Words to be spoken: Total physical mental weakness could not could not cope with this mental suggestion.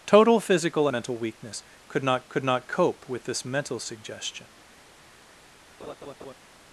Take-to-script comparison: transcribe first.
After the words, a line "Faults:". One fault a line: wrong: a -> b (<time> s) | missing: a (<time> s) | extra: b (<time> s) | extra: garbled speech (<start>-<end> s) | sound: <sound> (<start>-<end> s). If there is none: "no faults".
Total physical mental weakness could not could not cope with this mental suggestion.
Faults:
sound: laugh (5.8-6.3 s)